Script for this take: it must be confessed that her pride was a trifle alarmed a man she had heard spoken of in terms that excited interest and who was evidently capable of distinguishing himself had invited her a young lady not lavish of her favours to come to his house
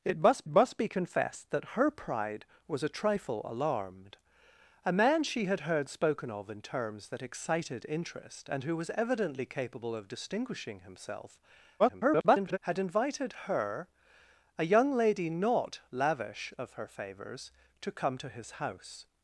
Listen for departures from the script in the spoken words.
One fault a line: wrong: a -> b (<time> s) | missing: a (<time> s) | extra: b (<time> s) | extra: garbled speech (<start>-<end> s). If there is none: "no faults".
extra: must (0.5 s)
extra: garbled speech (11.8-12.6 s)